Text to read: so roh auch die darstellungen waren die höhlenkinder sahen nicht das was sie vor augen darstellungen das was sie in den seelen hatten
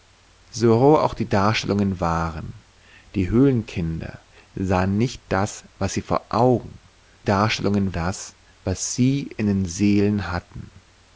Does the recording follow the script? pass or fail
pass